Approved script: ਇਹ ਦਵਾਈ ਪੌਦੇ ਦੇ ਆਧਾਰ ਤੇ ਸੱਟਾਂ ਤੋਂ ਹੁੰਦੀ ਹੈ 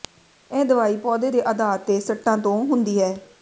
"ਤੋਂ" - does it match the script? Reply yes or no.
yes